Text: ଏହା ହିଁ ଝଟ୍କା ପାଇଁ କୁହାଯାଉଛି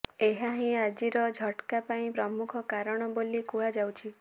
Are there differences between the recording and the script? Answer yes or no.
yes